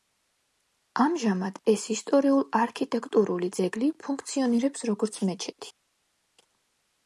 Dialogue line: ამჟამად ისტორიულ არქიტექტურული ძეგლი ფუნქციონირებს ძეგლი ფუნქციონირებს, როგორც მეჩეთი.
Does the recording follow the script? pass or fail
fail